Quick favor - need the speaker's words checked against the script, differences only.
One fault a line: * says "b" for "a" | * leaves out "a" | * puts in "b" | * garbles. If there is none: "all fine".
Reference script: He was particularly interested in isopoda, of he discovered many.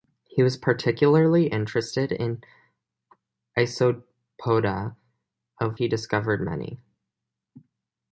all fine